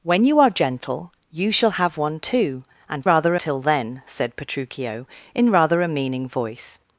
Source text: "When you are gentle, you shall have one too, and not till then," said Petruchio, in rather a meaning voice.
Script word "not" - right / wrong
wrong